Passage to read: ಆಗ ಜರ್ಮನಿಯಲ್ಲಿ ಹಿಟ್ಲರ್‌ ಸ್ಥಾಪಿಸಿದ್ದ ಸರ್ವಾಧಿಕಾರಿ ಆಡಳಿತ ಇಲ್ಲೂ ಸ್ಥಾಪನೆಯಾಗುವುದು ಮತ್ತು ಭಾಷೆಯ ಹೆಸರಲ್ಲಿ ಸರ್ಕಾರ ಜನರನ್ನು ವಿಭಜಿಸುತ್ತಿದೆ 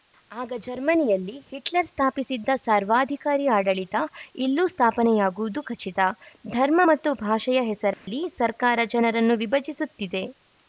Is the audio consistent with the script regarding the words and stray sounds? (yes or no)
no